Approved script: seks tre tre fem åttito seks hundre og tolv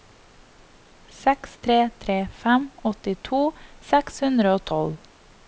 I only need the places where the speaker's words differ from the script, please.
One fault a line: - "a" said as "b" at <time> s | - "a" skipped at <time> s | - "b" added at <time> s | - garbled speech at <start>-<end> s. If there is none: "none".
none